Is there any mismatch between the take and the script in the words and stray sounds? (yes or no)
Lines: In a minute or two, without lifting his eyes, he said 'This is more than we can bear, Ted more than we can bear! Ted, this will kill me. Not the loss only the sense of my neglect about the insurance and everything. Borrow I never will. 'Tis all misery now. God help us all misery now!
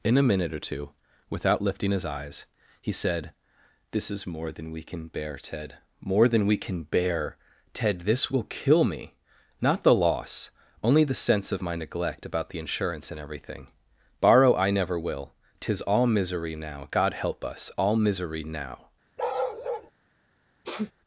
yes